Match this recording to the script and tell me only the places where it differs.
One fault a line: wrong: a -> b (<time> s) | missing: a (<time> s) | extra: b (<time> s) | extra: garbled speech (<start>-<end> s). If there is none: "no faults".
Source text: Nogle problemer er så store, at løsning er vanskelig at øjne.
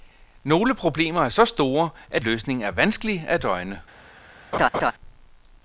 no faults